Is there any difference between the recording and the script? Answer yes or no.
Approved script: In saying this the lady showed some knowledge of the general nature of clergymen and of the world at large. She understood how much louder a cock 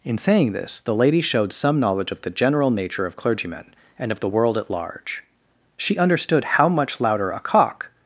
no